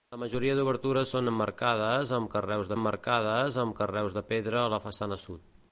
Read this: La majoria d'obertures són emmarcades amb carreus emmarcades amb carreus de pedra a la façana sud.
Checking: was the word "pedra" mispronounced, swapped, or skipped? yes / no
no